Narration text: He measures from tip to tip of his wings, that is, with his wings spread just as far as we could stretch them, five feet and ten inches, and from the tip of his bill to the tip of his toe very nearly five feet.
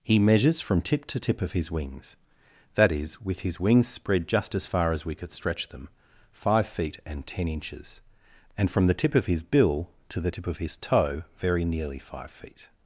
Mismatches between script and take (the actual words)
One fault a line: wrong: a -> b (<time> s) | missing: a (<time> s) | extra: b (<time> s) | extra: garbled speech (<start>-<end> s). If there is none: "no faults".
no faults